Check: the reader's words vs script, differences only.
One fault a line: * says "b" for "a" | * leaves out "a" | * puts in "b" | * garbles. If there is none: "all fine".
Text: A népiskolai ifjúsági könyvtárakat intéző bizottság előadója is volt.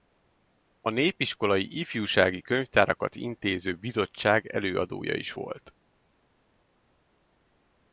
all fine